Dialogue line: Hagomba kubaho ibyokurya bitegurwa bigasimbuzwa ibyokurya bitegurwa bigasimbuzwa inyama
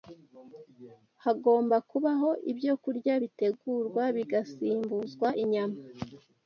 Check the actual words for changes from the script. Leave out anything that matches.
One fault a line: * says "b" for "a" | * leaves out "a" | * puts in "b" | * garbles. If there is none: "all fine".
* leaves out "ibyokurya bitegurwa bigasimbuzwa"